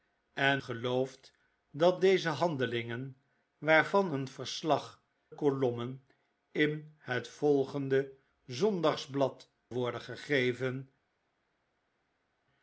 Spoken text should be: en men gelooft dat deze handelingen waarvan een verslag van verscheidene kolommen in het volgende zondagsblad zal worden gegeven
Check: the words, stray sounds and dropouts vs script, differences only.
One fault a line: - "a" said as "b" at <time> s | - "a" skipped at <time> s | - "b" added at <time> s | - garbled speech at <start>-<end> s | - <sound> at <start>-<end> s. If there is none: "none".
- "men" skipped at 0.6 s
- "van verscheidene" skipped at 5.0 s
- "zal" skipped at 9.5 s